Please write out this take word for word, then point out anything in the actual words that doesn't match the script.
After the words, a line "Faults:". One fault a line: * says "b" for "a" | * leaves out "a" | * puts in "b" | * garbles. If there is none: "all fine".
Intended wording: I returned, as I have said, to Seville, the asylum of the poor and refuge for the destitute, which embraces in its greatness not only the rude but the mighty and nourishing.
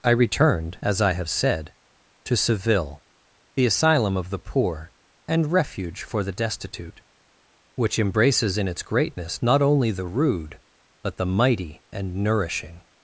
I returned, as I have said, to Seville, the asylum of the poor and refuge for the destitute, which embraces in its greatness not only the rude but the mighty and nourishing.
Faults:
all fine